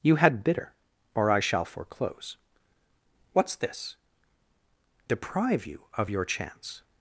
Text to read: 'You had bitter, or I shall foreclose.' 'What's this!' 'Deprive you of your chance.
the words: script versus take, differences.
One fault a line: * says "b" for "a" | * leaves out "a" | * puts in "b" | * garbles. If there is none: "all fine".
all fine